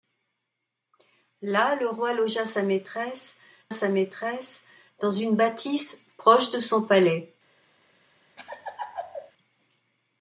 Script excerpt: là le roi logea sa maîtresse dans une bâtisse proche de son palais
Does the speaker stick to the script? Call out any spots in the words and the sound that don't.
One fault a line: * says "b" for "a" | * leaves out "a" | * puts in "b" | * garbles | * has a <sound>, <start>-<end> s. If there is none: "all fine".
* puts in "sa maîtresse"
* has a laugh, 8.4-9.3 s